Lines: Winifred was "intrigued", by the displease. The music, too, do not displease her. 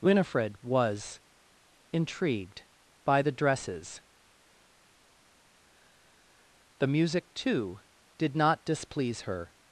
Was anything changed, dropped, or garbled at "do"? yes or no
yes